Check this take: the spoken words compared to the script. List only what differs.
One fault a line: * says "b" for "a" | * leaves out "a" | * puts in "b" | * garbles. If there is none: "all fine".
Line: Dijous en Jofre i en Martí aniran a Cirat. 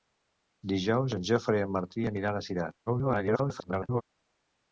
* garbles